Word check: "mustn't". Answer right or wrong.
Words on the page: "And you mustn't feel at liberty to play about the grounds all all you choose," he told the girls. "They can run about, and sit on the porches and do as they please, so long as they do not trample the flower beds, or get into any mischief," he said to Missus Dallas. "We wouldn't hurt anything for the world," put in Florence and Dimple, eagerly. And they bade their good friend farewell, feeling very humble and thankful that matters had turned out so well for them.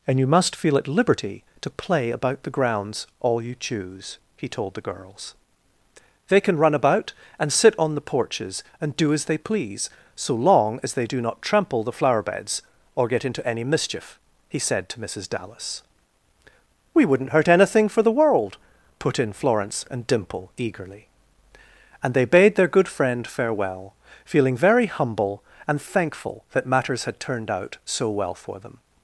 wrong